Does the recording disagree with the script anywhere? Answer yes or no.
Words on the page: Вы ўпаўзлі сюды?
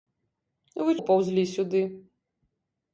no